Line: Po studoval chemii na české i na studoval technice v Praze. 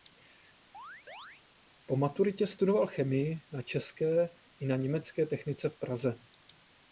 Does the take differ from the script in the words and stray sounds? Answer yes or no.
yes